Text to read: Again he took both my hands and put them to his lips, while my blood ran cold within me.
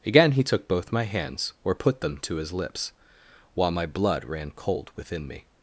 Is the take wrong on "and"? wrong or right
wrong